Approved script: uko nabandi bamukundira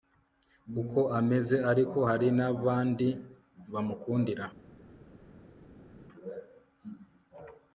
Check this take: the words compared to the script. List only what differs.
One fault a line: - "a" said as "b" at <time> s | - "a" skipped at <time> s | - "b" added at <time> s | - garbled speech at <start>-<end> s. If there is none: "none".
- "ameze ariko hari" added at 1.2 s